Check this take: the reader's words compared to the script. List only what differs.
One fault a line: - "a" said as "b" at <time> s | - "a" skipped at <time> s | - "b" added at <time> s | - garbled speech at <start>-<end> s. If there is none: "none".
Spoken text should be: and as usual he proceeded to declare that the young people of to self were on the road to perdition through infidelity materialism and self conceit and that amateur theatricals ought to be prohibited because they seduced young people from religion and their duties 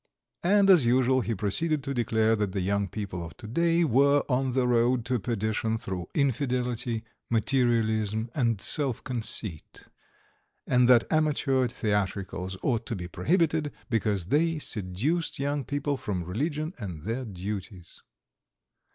- "self" said as "day" at 3.5 s